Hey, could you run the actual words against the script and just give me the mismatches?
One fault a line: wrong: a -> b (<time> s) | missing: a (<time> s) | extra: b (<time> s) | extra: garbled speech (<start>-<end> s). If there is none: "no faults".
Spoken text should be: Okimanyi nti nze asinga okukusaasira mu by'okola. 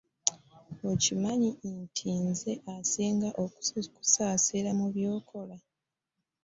no faults